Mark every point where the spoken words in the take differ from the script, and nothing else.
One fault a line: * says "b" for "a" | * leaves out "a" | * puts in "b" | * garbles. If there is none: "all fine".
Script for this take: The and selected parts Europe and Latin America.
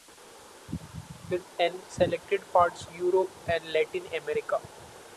all fine